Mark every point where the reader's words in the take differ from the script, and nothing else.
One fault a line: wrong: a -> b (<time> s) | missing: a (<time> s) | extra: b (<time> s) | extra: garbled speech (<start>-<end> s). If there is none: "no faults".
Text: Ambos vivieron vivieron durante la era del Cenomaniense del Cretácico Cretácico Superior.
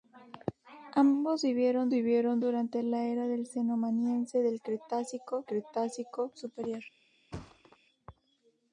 no faults